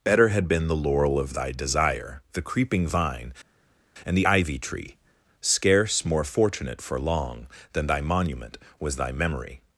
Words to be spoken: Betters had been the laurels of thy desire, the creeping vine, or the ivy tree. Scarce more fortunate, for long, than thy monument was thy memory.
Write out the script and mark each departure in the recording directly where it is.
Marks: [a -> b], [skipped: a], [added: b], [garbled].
[Betters -> Better] had been the [laurels -> laurel] of thy desire, the creeping vine, [or -> and] the ivy tree. Scarce more fortunate, for long, than thy monument was thy memory.